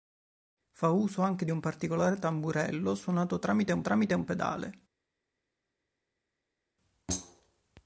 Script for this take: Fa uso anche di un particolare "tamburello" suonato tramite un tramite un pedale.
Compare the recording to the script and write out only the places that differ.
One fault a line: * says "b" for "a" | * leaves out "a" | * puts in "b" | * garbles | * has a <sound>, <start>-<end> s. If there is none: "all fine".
all fine